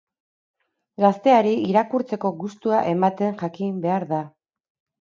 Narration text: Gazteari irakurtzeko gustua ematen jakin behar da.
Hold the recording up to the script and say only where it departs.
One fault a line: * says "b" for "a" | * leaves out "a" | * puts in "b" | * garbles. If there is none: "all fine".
all fine